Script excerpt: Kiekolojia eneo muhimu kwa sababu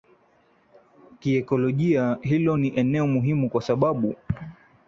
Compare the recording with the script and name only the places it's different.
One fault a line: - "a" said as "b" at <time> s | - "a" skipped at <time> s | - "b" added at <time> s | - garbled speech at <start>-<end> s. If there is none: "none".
- "hilo ni" added at 2.2 s